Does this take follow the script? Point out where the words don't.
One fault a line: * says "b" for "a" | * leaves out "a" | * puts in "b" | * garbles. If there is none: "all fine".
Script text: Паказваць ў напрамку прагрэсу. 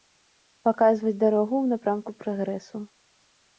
* puts in "дарогу"